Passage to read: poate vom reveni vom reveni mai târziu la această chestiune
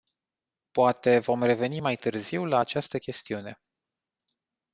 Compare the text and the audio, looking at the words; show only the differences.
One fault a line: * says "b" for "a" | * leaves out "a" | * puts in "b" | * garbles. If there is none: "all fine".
* leaves out "vom reveni"